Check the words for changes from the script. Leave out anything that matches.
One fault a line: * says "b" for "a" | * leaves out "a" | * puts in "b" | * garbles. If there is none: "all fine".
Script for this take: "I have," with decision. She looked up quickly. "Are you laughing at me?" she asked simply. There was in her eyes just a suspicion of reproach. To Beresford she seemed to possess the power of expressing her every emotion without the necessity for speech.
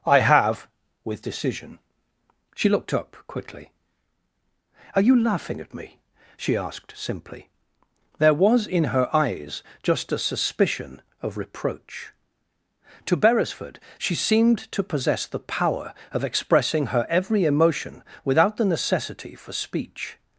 all fine